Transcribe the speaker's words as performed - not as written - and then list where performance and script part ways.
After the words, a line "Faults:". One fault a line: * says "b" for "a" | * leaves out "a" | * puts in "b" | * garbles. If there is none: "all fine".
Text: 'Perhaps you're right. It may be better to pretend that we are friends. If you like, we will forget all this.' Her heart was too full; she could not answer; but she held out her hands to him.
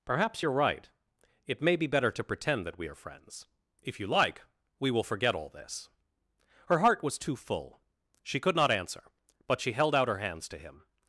'Perhaps you're right. It may be better to pretend that we are friends. If you like, we will forget all this.' Her heart was too full; she could not answer; but she held out her hands to him.
Faults:
all fine